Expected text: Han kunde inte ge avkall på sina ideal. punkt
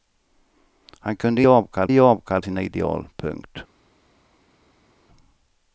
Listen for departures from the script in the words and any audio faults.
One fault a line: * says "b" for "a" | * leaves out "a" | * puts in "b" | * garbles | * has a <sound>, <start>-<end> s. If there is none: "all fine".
* says "avkall" for "inte"
* leaves out "på"